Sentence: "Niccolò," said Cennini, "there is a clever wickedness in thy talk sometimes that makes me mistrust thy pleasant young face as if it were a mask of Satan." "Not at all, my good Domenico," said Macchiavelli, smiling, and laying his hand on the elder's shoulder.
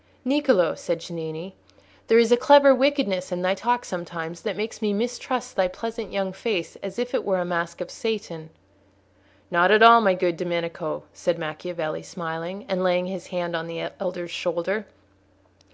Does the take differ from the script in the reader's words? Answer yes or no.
no